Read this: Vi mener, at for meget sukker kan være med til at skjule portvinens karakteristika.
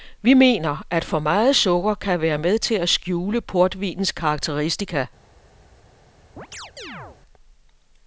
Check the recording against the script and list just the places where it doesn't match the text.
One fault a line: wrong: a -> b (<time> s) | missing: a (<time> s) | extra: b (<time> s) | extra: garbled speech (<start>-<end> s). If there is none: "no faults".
no faults